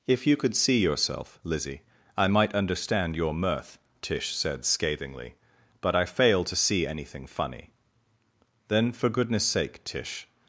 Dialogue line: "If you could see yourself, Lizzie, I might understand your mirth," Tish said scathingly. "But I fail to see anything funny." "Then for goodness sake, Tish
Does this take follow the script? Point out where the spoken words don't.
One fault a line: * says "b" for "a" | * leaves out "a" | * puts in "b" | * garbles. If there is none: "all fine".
all fine